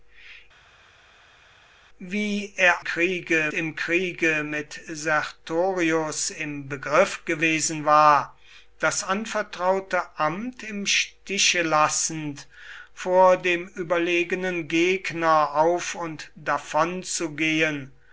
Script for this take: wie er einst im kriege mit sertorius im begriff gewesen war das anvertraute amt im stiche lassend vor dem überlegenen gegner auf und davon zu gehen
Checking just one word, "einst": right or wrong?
wrong